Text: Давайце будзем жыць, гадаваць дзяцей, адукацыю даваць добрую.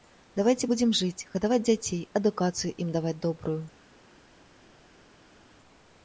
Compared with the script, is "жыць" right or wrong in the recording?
right